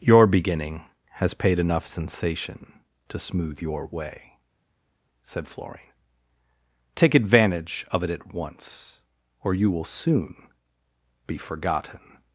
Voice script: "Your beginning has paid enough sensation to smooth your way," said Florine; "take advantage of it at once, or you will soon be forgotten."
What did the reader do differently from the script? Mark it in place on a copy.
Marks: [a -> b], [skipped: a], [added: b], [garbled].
"Your beginning has paid enough sensation to smooth your way," said Florine; "take advantage of it at once, or you will soon be forgotten."